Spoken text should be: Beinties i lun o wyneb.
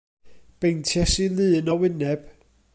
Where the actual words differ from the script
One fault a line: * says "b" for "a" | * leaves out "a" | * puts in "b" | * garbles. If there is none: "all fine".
all fine